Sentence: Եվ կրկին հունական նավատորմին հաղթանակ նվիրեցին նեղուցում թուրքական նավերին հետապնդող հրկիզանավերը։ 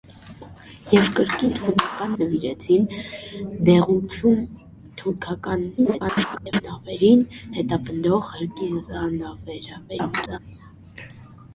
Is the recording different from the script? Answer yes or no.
yes